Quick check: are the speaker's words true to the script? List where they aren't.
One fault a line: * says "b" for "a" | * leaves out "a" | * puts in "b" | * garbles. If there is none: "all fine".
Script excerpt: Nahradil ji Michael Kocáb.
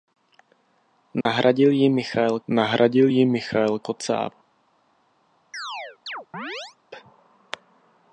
* puts in "nahradil ji Michael"